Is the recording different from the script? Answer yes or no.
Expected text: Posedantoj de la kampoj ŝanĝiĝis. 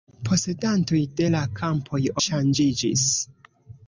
no